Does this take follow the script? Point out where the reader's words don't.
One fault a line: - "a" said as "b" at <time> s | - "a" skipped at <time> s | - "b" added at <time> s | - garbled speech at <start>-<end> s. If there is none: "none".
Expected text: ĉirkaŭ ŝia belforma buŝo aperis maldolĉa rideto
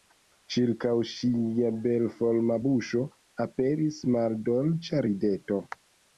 none